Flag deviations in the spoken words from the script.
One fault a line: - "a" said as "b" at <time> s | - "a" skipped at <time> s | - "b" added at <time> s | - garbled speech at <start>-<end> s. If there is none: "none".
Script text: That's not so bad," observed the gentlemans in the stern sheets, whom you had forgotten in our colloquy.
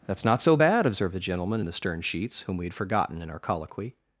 - "gentlemans" said as "gentleman" at 1.2 s
- "you" said as "we" at 2.6 s